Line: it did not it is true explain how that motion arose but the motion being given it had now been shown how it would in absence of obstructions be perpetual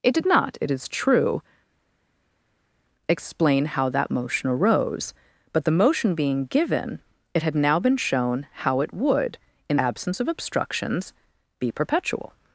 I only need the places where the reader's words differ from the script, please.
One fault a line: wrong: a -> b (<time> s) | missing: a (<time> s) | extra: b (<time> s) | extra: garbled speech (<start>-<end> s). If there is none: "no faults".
no faults